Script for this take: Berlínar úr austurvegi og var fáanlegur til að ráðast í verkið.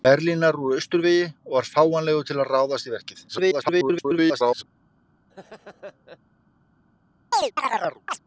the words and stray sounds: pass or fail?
fail